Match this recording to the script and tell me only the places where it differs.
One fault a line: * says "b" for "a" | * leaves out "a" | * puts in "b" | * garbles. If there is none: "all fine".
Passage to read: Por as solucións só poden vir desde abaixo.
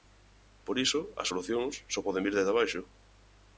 * puts in "iso"